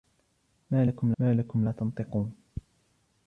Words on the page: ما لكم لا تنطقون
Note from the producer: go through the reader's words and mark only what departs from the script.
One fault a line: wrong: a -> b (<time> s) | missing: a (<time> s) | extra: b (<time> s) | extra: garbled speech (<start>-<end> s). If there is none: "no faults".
extra: ما لكم (1.2 s)